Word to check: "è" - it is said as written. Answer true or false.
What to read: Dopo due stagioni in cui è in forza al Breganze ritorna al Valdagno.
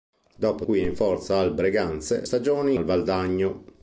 true